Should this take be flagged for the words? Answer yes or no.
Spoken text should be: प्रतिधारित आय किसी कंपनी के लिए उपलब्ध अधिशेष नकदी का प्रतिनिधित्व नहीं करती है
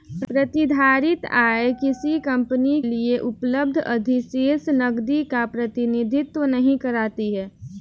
yes